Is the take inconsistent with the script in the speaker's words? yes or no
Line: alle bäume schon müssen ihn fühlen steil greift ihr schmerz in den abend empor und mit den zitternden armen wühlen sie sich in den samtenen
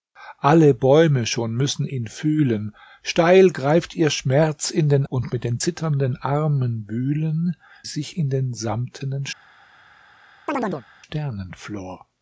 yes